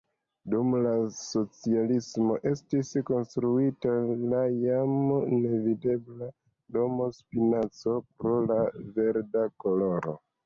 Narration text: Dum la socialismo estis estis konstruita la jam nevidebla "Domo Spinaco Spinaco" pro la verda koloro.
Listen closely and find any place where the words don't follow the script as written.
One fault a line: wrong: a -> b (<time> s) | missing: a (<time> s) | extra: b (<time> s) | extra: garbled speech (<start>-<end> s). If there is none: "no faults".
missing: estis (2.9 s)
missing: Spinaco (8.0 s)